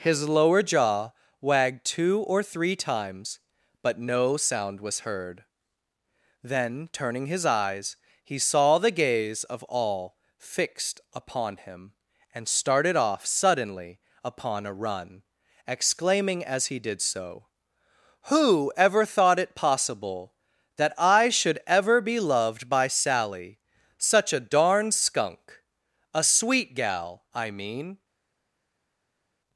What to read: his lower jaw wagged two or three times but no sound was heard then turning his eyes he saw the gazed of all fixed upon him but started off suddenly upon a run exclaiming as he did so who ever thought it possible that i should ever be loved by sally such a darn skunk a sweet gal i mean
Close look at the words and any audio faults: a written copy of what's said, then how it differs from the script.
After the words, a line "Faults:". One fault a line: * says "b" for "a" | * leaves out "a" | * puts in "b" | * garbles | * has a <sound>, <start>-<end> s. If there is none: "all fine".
his lower jaw wagged two or three times but no sound was heard then turning his eyes he saw the gaze of all fixed upon him and started off suddenly upon a run exclaiming as he did so who ever thought it possible that i should ever be loved by sally such a darn skunk a sweet gal i mean
Faults:
* says "gaze" for "gazed"
* says "and" for "but"